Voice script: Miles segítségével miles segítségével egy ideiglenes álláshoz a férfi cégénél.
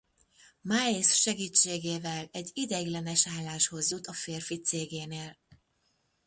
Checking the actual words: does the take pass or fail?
fail